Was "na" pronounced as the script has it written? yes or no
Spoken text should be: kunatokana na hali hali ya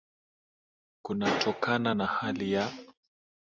yes